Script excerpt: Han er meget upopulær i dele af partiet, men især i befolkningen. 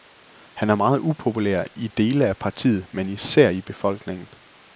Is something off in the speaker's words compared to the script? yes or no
no